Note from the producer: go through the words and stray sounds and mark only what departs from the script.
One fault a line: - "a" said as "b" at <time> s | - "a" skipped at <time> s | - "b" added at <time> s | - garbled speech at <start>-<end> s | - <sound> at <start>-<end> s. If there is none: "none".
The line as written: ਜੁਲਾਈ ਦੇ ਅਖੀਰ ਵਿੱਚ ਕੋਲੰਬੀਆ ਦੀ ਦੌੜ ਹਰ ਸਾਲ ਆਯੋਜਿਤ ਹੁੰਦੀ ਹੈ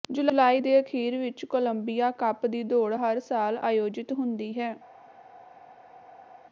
- "ਕੱਪ" added at 2.2 s